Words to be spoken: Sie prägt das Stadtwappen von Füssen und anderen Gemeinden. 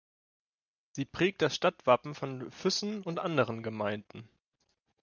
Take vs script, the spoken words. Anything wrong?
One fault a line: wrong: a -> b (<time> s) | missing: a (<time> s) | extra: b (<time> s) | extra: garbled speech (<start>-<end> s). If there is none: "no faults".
no faults